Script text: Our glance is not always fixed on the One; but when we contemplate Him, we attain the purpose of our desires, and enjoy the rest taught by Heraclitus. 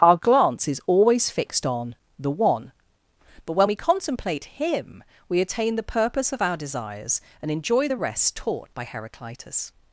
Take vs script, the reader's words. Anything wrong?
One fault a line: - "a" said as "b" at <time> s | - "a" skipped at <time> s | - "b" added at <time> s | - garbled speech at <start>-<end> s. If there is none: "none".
- "not" skipped at 0.8 s